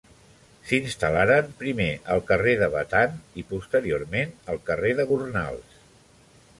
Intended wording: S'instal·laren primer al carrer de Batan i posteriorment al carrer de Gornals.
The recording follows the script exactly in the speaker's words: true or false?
true